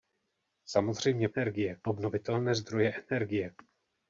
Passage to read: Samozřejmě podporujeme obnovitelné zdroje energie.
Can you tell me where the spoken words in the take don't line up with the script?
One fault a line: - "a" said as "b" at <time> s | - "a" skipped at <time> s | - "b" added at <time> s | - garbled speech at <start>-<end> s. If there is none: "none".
- "podporujeme" said as "energie" at 1.4 s